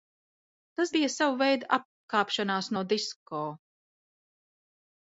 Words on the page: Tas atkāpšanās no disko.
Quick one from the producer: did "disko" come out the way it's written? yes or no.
yes